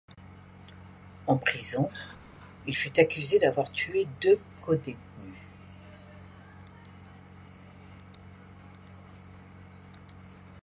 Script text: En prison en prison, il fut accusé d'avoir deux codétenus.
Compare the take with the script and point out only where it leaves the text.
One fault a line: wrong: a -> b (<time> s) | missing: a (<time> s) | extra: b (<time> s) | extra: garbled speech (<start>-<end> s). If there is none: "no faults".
missing: en prison (1.9 s)
extra: tué (3.7 s)